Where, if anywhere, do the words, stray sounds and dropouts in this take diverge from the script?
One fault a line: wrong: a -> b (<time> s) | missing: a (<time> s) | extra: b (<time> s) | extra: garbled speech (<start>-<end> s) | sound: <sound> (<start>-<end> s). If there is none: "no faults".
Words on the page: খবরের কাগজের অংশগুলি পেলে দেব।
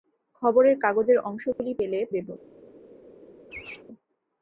sound: dropout (1.5-1.6 s)
sound: laugh (3.5-3.8 s)